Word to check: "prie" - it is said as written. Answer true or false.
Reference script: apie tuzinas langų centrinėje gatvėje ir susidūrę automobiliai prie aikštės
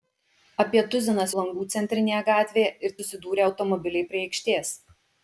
true